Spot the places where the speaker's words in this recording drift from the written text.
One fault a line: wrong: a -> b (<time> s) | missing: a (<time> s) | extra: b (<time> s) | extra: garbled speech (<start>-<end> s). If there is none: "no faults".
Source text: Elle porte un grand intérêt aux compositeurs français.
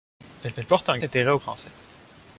extra: elle (0.6 s)
missing: grand (1.0 s)
missing: compositeurs (1.4 s)